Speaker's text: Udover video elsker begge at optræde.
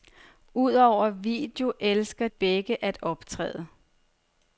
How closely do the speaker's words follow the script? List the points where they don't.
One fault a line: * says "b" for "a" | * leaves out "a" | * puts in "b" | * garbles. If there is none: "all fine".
all fine